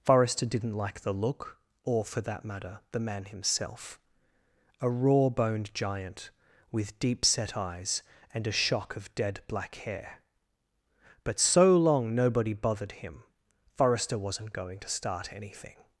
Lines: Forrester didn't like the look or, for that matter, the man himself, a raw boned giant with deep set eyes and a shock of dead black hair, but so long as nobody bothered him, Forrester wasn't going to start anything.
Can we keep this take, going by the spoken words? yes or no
no